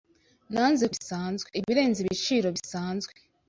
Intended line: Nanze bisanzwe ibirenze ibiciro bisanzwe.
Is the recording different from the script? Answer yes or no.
no